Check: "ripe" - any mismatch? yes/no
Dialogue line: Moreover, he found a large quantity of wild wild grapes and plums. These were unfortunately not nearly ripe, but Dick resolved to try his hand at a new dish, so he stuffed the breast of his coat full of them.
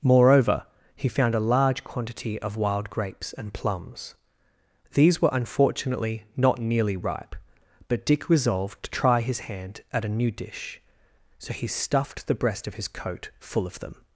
no